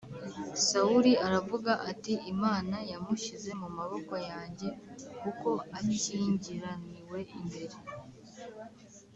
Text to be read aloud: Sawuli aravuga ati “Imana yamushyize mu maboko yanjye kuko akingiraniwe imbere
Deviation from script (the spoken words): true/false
false